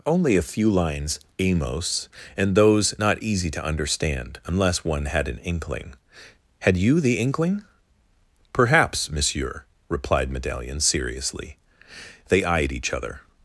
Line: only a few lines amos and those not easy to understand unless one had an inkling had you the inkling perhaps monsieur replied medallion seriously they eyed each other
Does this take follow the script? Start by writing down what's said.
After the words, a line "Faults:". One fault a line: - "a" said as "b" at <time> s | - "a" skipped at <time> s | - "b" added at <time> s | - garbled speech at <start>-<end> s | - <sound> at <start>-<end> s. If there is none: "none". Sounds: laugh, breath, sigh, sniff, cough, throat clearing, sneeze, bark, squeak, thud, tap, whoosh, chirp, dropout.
only a few lines amos and those not easy to understand unless one had an inkling had you the inkling perhaps monsieur replied medallion seriously they eyed each other
Faults:
none